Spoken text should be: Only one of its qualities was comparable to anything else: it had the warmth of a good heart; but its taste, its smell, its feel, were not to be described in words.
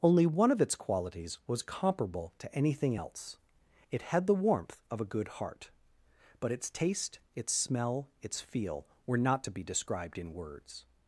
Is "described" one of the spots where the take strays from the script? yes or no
no